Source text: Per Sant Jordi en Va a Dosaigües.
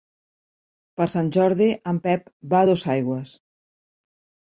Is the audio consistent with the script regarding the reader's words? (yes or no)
no